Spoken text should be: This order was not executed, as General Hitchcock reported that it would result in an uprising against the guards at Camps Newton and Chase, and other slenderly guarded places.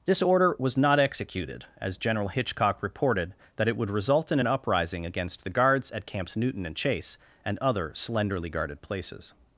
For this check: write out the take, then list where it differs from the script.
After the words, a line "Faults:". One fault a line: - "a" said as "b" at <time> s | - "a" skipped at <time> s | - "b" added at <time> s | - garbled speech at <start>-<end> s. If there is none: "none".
This order was not executed, as General Hitchcock reported that it would result in an uprising against the guards at Camps Newton and Chase, and other slenderly guarded places.
Faults:
none